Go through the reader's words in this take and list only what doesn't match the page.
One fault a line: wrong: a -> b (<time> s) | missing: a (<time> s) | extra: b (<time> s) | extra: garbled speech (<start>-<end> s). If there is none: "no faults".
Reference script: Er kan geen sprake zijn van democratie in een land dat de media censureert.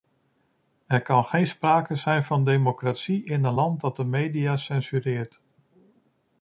no faults